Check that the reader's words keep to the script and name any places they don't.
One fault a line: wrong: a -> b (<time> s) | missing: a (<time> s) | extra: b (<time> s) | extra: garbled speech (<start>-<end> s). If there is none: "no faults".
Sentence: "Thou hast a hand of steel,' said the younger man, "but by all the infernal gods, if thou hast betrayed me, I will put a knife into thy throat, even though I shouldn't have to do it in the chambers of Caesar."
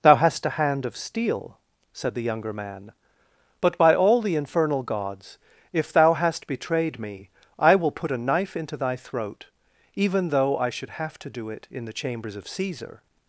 wrong: shouldn't -> should (10.7 s)